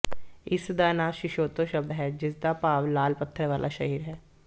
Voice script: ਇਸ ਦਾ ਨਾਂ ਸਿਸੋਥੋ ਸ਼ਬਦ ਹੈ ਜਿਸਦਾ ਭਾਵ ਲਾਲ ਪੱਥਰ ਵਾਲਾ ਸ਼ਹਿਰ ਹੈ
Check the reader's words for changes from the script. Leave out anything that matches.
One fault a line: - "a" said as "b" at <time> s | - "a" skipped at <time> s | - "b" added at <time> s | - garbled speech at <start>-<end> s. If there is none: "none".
none